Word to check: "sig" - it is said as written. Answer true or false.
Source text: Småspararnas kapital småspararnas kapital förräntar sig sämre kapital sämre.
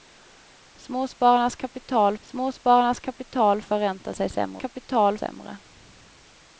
true